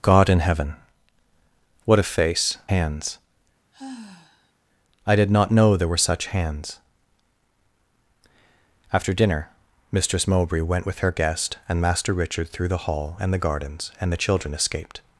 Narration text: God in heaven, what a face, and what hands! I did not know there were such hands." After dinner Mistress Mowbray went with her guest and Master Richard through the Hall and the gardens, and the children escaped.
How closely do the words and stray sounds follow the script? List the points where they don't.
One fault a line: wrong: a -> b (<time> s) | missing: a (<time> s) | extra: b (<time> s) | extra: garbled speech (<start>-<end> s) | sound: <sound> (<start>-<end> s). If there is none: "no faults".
missing: and what (2.6 s)
sound: sigh (3.7-4.5 s)